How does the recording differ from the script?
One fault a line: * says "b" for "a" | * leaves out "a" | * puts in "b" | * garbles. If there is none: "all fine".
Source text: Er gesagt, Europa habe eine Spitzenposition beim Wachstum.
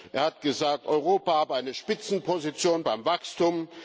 * puts in "hat"